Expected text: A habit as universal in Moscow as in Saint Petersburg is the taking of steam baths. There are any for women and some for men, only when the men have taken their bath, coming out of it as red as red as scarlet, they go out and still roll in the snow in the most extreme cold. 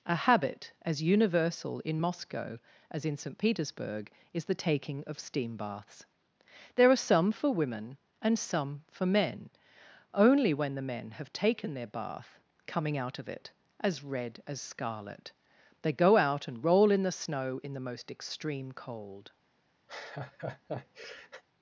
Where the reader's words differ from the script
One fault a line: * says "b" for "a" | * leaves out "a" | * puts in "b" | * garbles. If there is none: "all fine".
* says "some" for "any"
* leaves out "red as"
* leaves out "still"